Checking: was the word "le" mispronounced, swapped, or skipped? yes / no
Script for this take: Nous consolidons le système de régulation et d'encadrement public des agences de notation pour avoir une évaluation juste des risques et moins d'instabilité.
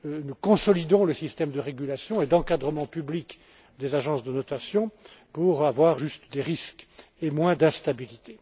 no